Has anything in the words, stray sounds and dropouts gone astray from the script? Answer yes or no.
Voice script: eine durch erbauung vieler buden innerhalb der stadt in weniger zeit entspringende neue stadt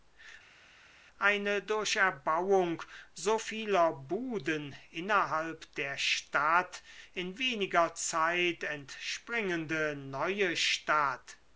yes